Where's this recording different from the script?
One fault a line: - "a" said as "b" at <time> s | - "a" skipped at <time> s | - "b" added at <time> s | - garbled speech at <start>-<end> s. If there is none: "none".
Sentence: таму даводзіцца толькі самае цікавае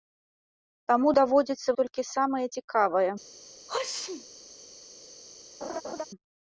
none